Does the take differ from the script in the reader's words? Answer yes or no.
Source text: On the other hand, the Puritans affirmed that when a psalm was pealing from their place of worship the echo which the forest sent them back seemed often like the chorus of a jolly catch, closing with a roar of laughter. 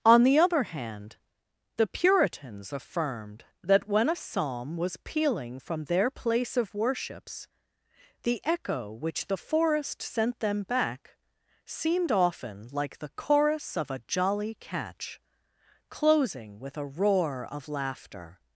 yes